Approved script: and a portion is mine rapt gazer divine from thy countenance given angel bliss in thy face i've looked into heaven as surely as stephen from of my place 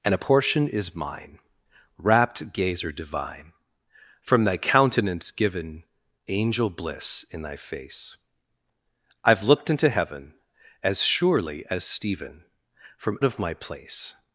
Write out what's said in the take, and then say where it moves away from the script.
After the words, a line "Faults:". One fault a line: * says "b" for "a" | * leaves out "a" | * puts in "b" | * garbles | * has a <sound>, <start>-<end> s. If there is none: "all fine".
and a portion is mine rapt gazer divine from thy countenance given angel bliss in thy face i've looked into heaven as surely as stephen from of my place
Faults:
all fine